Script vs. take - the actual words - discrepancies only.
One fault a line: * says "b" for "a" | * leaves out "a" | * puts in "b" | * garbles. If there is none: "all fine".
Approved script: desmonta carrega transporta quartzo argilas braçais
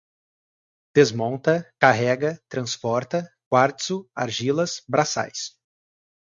all fine